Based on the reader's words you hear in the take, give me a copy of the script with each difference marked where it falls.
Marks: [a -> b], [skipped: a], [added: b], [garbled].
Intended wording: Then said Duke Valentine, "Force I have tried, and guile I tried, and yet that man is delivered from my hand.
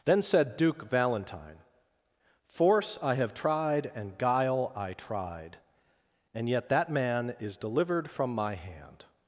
Then said Duke Valentine, "Force I have tried, and guile I tried, and yet that man is delivered from my hand.